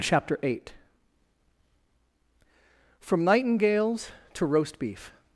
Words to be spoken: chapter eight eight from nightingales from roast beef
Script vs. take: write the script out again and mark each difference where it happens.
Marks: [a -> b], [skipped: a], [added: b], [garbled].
chapter eight [skipped: eight] from nightingales [from -> to] roast beef